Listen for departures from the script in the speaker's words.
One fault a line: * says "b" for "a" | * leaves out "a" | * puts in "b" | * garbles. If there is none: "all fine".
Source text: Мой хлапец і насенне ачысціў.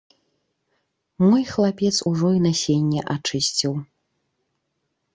* puts in "ужо"